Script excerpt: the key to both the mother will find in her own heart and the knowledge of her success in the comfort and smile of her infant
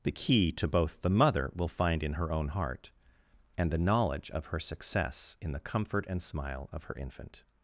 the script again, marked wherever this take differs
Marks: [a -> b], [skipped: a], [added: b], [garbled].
the key to both the mother will find in her own heart and the knowledge of her success in the comfort and smile of her infant